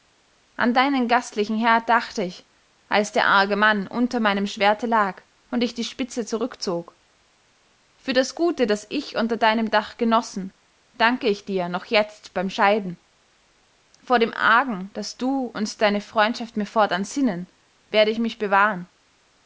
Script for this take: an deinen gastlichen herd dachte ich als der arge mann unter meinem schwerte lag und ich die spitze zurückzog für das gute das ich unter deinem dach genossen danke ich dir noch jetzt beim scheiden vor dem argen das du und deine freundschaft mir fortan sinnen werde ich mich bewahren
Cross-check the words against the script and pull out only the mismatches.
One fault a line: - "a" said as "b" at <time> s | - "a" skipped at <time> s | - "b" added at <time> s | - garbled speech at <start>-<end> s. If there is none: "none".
none